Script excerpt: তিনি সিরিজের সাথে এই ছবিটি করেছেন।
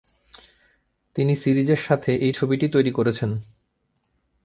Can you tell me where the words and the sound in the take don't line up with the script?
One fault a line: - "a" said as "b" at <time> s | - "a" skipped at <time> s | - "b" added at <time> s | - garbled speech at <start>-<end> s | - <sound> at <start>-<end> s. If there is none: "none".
- "তৈরি" added at 2.7 s